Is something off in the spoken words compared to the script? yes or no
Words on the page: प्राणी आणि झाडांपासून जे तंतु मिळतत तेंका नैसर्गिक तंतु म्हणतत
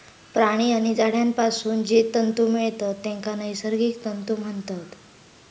no